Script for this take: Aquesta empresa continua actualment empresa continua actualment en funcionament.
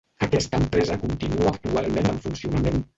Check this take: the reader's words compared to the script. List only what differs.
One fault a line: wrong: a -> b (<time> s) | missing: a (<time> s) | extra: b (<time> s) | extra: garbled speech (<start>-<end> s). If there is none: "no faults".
missing: empresa continua actualment (2.1 s)